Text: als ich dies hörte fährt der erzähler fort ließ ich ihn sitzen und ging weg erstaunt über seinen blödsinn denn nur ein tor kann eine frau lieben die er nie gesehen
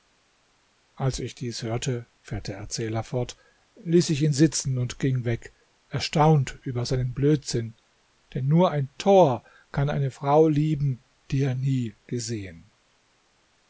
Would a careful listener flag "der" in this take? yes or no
no